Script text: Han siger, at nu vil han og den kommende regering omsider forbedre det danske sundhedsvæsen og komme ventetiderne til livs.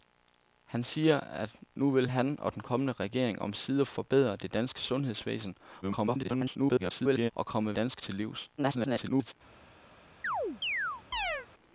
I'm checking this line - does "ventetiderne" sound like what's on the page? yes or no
no